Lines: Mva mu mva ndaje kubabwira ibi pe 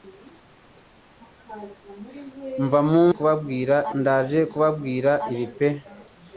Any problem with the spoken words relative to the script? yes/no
yes